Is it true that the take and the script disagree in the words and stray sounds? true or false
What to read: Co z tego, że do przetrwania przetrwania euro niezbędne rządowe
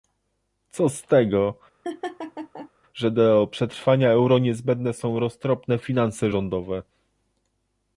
true